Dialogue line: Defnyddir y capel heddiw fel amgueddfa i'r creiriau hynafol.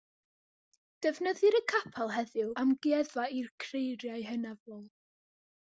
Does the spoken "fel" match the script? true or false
false